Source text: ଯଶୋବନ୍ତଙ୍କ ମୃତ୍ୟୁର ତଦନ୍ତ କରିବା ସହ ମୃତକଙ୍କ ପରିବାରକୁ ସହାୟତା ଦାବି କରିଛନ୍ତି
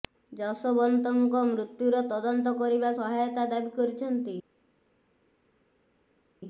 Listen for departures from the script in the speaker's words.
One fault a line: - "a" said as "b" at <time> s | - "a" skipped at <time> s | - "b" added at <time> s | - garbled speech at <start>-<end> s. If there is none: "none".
- "ସହ ମୃତକଙ୍କ ପରିବାରକୁ" skipped at 2.9 s